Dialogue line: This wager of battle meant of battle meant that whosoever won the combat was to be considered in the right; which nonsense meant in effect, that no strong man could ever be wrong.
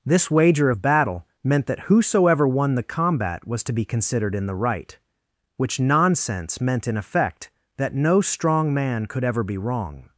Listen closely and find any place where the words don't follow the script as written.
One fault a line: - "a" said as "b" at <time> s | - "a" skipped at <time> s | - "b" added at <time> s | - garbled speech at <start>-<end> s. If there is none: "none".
- "of battle meant" skipped at 1.7 s